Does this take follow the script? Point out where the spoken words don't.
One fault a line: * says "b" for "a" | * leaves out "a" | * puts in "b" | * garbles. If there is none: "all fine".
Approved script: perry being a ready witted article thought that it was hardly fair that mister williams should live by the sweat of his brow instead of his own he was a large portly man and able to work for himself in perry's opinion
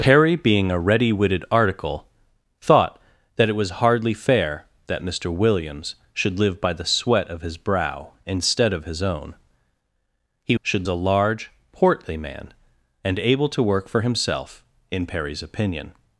* says "should" for "was"